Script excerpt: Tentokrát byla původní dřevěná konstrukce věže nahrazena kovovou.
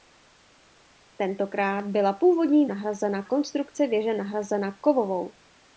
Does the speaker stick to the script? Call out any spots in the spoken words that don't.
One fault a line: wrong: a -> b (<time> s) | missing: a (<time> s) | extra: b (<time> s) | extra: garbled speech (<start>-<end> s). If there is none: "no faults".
wrong: dřevěná -> nahrazena (2.6 s)